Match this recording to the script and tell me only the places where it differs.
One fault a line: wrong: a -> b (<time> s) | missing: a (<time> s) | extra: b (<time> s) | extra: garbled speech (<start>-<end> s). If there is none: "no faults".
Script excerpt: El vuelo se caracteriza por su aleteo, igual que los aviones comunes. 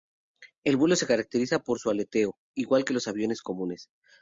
no faults